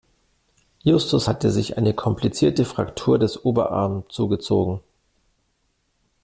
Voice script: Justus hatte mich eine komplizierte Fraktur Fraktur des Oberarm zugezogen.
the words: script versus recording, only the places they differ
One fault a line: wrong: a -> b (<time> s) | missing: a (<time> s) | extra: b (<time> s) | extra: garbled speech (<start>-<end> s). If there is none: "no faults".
wrong: mich -> sich (1.5 s)
missing: Fraktur (3.2 s)